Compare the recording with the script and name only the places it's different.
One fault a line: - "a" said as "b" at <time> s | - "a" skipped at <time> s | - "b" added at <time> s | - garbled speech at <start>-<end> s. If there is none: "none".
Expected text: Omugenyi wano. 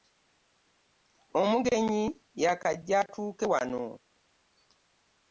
- "y'akajja atuuke" added at 2.4 s